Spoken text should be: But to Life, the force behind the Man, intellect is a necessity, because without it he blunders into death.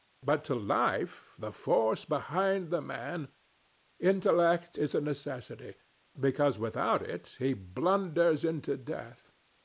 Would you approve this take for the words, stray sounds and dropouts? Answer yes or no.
yes